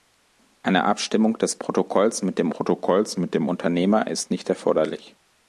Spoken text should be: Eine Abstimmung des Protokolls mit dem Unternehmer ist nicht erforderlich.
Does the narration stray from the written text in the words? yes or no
yes